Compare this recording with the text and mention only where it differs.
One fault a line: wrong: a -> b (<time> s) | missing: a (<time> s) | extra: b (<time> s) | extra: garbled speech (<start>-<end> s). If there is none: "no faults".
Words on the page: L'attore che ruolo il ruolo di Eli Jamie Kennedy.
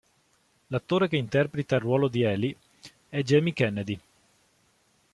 wrong: ruolo -> interpreta (1.1 s)
extra: è (3.1 s)